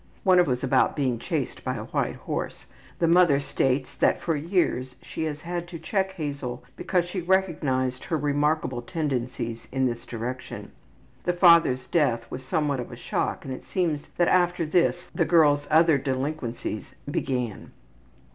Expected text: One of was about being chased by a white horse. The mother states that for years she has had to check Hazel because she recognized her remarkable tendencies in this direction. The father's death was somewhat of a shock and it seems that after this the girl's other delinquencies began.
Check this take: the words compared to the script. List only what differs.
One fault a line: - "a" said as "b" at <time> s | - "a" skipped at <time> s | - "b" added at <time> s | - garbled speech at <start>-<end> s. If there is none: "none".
none